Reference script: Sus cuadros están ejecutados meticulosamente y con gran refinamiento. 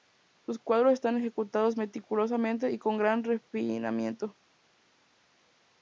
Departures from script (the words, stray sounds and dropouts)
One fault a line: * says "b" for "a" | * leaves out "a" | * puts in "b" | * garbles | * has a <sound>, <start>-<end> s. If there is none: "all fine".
all fine